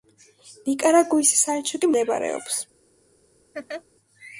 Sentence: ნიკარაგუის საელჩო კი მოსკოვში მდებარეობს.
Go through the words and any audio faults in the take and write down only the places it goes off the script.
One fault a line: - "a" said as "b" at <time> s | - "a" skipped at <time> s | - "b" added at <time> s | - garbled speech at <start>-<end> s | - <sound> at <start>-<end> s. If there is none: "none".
- "მოსკოვში" skipped at 1.9 s
- laugh at 3.5-3.8 s